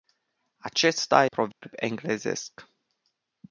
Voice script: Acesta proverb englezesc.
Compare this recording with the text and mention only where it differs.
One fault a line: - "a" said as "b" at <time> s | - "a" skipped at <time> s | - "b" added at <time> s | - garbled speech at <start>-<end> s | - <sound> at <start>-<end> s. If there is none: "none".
- dropout at 1.5-1.6 s